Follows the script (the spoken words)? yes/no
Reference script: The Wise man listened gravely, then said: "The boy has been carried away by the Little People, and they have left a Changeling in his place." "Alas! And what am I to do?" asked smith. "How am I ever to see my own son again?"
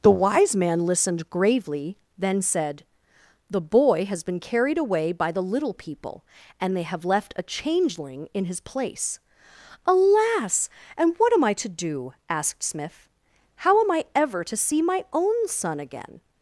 yes